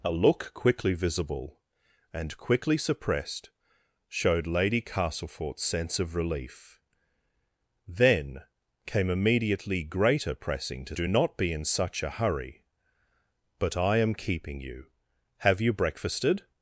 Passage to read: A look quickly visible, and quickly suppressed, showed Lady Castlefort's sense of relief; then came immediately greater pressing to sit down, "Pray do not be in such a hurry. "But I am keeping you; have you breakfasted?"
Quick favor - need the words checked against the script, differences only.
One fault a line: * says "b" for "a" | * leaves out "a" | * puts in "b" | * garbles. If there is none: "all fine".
* leaves out "sit down Pray"